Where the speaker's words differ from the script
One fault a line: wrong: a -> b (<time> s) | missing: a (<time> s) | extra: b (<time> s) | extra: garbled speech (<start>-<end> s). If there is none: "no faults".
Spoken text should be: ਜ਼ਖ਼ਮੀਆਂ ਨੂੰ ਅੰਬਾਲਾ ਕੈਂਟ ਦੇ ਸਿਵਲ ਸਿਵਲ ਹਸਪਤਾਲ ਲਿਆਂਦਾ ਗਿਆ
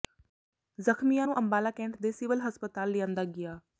missing: ਸਿਵਲ (2.4 s)